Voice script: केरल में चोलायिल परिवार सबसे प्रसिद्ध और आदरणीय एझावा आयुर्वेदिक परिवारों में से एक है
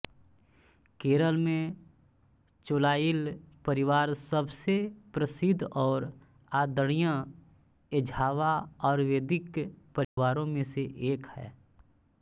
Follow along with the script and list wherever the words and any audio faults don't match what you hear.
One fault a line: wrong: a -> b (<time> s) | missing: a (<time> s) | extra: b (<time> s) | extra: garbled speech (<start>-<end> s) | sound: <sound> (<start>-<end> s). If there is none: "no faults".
sound: dropout (10.0-10.2 s)